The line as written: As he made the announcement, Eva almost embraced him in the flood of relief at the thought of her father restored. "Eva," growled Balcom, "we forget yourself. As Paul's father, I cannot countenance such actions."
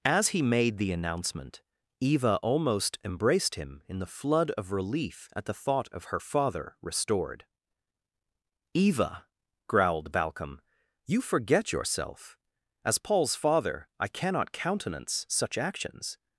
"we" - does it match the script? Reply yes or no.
no